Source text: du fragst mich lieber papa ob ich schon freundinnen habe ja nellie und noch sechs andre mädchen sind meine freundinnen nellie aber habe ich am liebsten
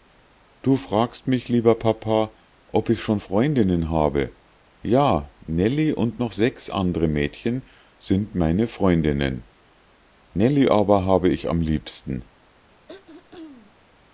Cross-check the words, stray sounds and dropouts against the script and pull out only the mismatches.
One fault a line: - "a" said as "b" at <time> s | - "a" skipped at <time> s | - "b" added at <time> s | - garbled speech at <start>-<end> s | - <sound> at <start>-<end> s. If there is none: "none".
- throat clearing at 12.9-13.9 s